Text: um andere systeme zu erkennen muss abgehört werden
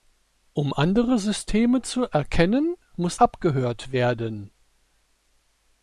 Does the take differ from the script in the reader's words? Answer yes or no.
no